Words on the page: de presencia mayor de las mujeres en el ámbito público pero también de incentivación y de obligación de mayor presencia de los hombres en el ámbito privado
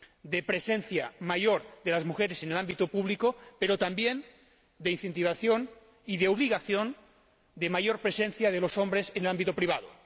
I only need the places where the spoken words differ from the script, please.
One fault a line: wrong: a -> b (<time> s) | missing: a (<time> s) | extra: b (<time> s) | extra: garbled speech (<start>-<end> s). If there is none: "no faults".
no faults